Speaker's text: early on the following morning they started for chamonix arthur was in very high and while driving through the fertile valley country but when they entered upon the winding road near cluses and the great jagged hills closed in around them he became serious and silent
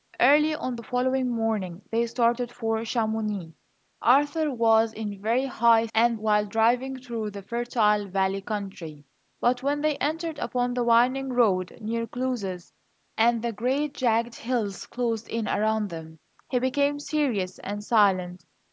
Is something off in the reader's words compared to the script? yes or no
no